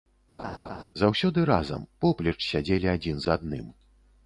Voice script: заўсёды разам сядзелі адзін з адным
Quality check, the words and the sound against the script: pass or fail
fail